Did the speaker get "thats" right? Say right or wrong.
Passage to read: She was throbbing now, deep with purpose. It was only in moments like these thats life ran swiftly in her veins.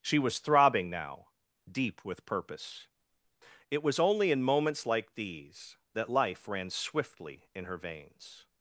wrong